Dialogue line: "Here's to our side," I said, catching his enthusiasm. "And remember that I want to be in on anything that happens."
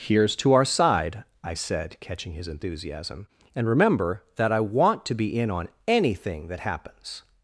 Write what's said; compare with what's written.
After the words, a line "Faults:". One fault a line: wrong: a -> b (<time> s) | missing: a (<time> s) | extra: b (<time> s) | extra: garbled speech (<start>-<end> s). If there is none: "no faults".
"Here's to our side," I said, catching his enthusiasm. "And remember that I want to be in on anything that happens."
Faults:
no faults